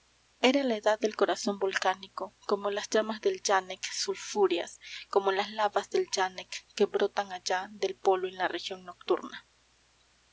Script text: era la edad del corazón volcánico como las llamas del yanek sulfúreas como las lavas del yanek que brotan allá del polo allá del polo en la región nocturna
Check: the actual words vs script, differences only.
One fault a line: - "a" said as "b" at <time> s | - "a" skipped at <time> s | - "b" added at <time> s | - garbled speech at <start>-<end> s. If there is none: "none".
- "allá del polo" skipped at 8.3 s